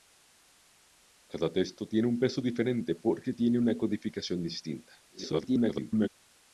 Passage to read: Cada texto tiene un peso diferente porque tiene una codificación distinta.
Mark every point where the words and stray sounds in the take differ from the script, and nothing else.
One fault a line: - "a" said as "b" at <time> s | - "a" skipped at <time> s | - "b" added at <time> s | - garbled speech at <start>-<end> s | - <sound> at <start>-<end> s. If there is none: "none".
- garbled speech at 5.1-6.1 s